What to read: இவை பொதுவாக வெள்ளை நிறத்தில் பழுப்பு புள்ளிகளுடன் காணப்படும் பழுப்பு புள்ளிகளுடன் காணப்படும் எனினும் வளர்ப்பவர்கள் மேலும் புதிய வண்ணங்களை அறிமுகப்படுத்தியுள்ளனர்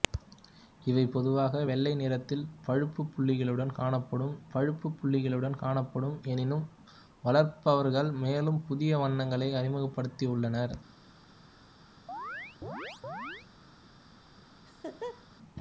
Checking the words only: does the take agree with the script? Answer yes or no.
yes